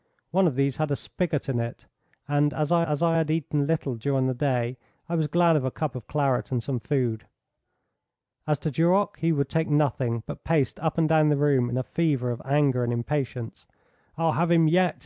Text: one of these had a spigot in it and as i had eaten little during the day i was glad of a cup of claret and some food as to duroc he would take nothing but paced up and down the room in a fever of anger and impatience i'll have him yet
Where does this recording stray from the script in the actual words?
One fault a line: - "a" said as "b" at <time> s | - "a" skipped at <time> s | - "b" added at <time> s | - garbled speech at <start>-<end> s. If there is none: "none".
- "as i" added at 2.9 s